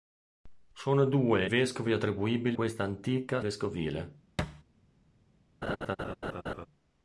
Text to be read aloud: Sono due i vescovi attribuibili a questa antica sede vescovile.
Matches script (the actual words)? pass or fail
fail